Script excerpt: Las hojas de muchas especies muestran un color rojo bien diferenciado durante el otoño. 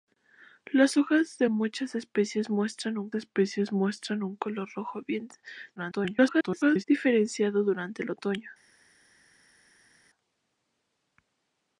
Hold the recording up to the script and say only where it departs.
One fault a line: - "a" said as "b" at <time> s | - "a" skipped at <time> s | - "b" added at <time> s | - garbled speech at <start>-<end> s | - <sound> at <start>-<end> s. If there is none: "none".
- "especies muestran un" added at 3.1 s
- garbled speech at 5.8-6.8 s